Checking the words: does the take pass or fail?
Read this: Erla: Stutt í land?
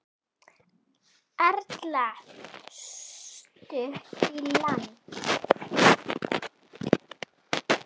pass